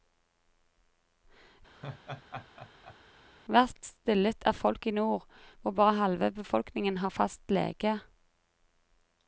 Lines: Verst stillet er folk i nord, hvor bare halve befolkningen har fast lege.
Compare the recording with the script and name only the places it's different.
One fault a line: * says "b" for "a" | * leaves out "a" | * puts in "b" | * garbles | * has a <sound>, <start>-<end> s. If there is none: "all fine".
* has a laugh, 1.7-3.0 s